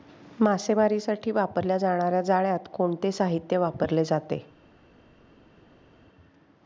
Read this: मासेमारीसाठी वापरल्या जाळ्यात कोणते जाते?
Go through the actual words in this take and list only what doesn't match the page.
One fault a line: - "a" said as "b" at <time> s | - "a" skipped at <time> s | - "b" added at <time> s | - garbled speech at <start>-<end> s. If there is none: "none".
- "जाणार्या" added at 1.8 s
- "साहित्य वापरले" added at 3.1 s